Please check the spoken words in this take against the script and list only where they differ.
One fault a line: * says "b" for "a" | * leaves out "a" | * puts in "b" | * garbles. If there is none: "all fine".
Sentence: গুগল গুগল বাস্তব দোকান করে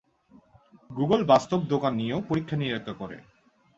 * leaves out "গুগল"
* puts in "নিয়েও পরীক্ষা-নিরীক্ষা"